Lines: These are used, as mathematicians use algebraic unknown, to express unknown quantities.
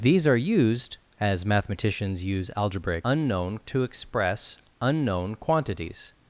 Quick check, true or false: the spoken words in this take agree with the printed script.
true